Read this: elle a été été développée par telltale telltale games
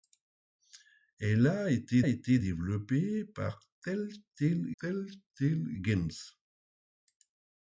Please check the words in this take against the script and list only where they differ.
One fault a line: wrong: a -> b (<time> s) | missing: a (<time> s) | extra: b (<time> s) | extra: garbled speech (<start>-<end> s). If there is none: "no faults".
no faults